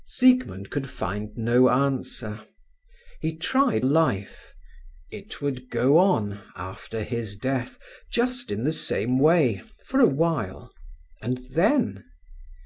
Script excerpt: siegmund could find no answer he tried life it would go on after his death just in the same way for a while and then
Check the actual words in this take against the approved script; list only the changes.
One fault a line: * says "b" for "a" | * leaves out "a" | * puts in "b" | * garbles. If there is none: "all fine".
all fine